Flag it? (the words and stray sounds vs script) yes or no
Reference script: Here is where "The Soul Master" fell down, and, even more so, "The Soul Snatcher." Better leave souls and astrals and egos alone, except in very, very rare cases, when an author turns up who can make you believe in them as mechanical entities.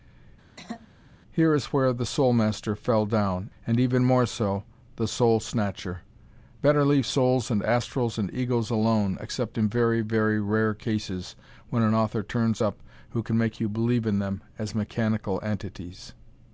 yes